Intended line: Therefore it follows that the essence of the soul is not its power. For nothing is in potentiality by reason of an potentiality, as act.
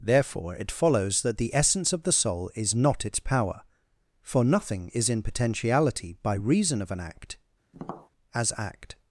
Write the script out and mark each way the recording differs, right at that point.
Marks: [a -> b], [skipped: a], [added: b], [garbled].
Therefore it follows that the essence of the soul is not its power. For nothing is in potentiality by reason of an [potentiality, -> act] as act.